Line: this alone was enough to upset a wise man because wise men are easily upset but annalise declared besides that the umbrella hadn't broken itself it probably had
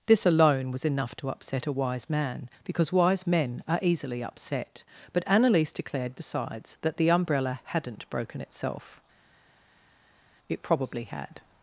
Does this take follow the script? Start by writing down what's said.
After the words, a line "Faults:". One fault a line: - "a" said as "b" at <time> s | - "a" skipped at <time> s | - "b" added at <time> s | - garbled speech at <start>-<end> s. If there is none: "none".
this alone was enough to upset a wise man because wise men are easily upset but annalise declared besides that the umbrella hadn't broken itself it probably had
Faults:
none